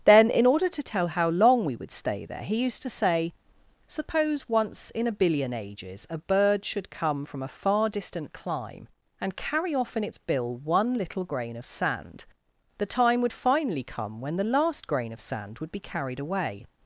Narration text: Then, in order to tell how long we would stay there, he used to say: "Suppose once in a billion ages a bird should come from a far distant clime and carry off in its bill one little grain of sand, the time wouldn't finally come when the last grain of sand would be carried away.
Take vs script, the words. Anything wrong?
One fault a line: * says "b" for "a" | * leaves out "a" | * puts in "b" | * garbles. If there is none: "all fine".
* says "would" for "wouldn't"